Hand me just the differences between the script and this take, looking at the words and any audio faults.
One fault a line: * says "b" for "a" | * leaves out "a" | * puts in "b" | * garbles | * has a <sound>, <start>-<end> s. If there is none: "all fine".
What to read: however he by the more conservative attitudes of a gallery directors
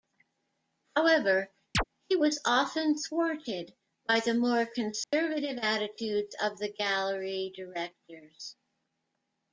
* has a chirp, 1.7-1.8 s
* puts in "was often thwarted"
* has a dropout, 5.0-5.1 s
* says "the" for "a"